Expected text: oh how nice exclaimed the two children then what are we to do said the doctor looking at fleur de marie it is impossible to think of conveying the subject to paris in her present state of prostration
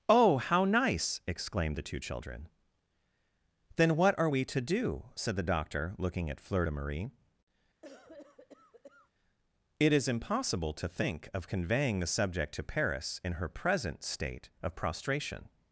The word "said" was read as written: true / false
true